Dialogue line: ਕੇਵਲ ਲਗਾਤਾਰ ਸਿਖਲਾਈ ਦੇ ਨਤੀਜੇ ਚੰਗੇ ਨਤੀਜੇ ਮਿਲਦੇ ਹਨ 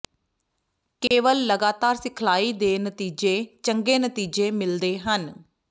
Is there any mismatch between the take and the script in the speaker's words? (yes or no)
no